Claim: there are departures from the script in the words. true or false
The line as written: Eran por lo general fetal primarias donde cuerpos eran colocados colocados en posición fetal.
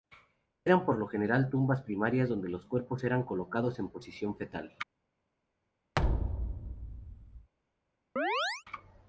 true